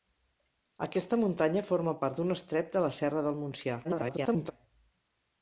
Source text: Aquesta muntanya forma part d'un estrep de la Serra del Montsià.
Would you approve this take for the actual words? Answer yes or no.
no